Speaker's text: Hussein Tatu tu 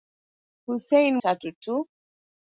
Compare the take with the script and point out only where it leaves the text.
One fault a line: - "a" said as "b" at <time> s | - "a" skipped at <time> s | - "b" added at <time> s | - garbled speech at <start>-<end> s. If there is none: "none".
none